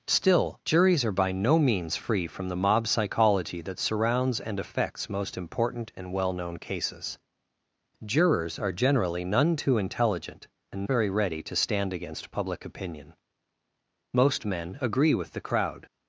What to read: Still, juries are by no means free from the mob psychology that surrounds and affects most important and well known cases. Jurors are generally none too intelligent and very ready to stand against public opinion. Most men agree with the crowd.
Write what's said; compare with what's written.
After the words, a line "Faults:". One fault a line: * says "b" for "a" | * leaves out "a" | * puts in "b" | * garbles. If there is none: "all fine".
Still, juries are by no means free from the mob psychology that surrounds and affects most important and well known cases. Jurors are generally none too intelligent and very ready to stand against public opinion. Most men agree with the crowd.
Faults:
all fine